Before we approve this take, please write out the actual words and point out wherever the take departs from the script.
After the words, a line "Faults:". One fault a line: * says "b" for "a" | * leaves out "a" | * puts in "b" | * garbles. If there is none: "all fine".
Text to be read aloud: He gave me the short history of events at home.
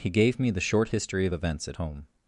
He gave me the short history of events at home.
Faults:
all fine